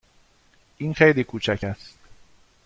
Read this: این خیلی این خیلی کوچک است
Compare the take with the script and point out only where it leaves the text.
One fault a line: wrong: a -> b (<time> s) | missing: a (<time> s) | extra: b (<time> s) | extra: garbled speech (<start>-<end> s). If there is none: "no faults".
missing: این خیلی (1.2 s)